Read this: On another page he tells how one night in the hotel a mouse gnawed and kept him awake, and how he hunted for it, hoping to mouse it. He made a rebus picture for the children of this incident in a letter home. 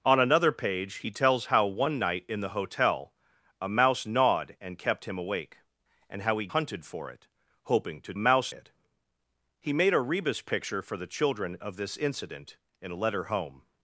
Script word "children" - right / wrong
right